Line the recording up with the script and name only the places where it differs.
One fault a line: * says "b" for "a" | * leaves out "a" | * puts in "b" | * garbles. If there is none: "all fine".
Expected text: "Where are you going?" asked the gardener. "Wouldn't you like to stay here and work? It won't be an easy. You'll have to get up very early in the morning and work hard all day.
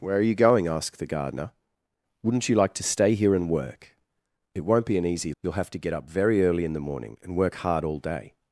all fine